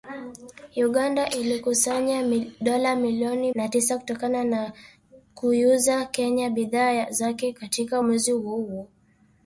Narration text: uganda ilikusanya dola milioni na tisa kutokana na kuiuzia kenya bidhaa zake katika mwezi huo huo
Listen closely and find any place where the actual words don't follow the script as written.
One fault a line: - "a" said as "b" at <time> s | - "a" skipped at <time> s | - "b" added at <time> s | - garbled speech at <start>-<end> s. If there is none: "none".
none